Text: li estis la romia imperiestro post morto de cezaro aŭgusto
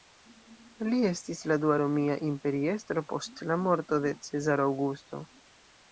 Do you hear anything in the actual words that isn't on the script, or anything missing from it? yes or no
yes